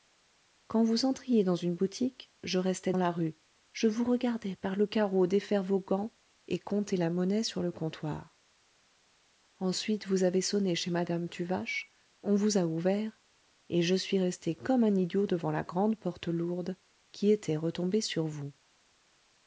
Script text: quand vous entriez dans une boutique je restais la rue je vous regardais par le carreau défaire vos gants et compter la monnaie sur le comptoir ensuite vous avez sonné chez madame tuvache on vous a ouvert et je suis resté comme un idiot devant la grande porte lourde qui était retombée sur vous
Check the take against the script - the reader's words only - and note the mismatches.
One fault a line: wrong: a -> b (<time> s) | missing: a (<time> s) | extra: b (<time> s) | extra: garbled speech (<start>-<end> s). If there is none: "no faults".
no faults